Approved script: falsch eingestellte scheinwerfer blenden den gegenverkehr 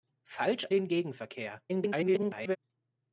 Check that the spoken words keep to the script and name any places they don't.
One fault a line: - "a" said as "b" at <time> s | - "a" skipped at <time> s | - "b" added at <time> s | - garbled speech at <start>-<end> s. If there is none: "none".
- "eingestellte scheinwerfer blenden" skipped at 0.7 s
- garbled speech at 1.7-2.6 s